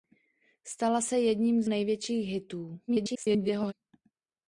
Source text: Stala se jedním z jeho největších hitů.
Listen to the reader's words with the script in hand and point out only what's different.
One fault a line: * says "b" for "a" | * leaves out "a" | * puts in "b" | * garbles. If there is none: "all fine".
* leaves out "jeho"
* garbles